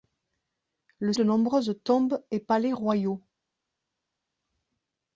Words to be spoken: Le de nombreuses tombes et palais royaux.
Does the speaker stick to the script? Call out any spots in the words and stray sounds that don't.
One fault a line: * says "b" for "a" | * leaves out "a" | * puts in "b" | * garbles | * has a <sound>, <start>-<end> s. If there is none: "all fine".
all fine